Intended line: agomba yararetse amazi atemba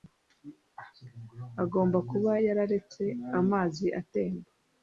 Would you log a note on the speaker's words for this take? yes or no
yes